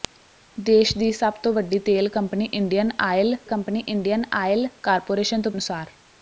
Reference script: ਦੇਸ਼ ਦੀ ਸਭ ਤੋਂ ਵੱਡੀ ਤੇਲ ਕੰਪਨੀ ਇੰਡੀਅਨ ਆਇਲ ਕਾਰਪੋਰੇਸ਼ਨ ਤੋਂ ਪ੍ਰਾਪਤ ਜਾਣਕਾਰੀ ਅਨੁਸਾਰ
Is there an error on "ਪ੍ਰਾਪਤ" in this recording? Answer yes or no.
yes